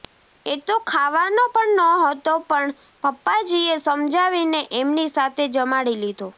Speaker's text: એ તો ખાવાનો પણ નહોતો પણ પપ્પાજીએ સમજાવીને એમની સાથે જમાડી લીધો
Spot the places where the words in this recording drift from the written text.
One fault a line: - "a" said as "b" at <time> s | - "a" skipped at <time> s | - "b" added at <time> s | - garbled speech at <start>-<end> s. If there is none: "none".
none